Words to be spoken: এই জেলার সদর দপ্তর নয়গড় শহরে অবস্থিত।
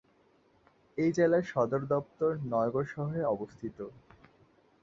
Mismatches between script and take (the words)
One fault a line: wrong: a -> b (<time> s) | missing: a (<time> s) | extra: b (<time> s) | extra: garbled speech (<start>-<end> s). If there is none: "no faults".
no faults